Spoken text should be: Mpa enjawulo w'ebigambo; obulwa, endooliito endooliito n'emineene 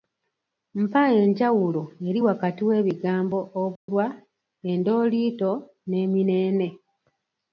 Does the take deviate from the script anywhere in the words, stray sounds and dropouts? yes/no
yes